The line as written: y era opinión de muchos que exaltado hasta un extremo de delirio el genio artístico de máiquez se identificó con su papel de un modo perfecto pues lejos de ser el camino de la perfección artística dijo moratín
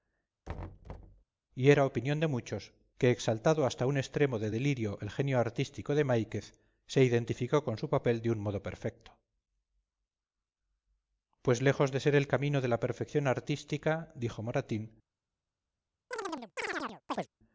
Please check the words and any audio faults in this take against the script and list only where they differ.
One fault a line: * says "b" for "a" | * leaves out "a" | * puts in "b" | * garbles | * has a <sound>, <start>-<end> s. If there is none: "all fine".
* has a thud, 0.5-1.2 s
* has a chirp, 16.1-17.3 s